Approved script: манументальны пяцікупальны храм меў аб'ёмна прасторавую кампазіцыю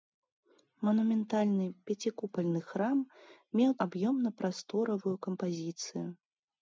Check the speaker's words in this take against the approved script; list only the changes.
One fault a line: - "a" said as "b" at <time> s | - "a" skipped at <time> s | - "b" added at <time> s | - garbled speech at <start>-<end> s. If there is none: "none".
none